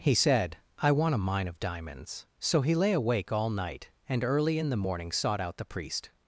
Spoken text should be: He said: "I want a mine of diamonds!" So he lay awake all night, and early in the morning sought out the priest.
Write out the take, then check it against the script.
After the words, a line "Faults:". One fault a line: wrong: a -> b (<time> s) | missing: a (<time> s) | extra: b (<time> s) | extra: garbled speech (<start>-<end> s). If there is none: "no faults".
He said: "I want a mine of diamonds!" So he lay awake all night, and early in the morning sought out the priest.
Faults:
no faults